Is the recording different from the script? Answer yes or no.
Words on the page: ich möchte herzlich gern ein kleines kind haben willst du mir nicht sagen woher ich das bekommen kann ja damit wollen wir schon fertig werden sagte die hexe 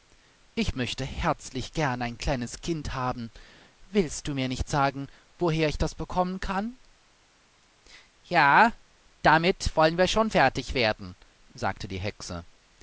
no